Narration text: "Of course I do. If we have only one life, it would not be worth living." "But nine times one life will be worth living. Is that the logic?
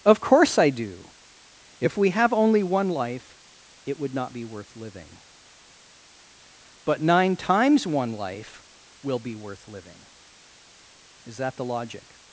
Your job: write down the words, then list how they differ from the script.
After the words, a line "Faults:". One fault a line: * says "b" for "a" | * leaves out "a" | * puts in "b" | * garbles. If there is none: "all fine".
"Of course I do. If we have only one life, it would not be worth living." "But nine times one life will be worth living. Is that the logic?
Faults:
all fine